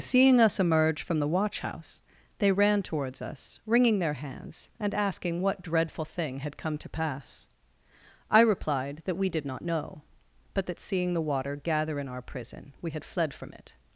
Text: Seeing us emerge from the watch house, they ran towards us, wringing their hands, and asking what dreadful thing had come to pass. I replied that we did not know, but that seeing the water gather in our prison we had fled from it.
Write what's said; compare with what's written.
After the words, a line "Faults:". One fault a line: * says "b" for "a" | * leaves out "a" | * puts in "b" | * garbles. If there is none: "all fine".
Seeing us emerge from the watch house, they ran towards us, wringing their hands, and asking what dreadful thing had come to pass. I replied that we did not know, but that seeing the water gather in our prison we had fled from it.
Faults:
all fine